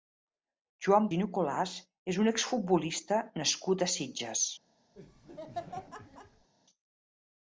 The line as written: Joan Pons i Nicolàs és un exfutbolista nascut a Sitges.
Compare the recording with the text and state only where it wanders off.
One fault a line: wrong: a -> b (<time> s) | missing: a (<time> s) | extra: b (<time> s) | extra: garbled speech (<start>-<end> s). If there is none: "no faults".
missing: Pons (1.1 s)